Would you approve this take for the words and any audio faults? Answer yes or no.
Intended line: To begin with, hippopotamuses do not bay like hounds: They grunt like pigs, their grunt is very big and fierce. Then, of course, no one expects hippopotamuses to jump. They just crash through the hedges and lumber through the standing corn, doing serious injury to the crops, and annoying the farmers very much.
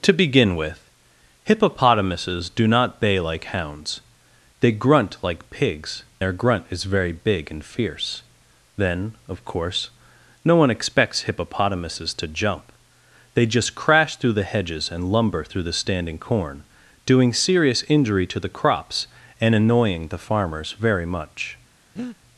no